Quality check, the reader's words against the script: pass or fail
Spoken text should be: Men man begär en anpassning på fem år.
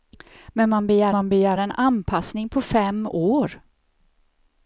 fail